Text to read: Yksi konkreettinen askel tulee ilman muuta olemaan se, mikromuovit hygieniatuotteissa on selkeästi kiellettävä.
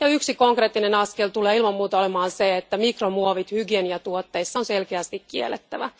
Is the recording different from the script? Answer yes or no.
yes